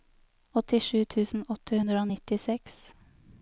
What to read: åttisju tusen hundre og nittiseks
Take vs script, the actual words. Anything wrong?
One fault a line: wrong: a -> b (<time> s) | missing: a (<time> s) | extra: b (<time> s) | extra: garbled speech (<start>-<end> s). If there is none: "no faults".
extra: åtte (1.6 s)